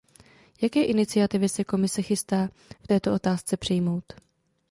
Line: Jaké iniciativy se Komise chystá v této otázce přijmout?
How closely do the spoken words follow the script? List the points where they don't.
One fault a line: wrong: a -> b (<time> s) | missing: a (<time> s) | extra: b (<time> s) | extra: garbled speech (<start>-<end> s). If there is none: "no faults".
no faults